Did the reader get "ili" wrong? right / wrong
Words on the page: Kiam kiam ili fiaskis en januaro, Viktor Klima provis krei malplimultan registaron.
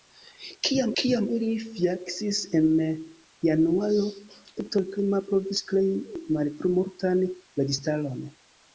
right